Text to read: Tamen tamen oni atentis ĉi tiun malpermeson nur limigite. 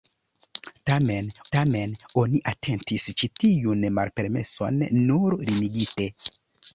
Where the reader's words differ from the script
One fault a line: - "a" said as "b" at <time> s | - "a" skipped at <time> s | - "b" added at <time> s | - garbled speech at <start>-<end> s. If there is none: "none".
none